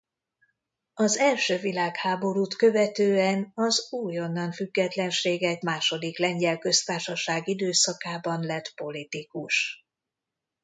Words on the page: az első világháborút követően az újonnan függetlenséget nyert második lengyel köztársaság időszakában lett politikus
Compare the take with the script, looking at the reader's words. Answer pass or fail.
fail